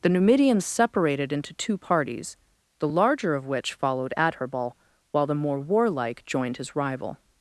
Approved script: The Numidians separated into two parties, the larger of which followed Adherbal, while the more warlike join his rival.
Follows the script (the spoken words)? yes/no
no